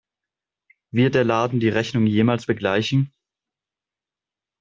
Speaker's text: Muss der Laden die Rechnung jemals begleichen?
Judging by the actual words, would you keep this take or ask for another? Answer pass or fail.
fail